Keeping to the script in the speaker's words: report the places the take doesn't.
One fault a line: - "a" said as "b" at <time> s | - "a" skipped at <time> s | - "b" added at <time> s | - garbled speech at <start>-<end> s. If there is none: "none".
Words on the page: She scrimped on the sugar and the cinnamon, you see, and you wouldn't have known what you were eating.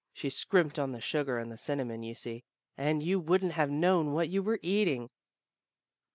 none